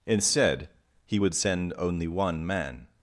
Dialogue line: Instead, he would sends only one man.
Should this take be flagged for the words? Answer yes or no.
yes